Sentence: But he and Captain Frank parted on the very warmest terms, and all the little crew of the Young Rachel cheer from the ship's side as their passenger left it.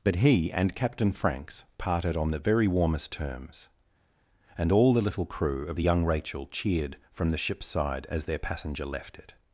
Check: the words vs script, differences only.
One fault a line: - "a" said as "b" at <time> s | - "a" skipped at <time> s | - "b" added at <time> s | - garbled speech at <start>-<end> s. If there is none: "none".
- "Frank" said as "Franks" at 1.1 s
- "cheer" said as "cheered" at 6.5 s